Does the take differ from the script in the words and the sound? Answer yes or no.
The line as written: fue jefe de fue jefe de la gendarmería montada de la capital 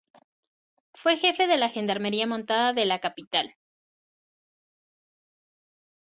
yes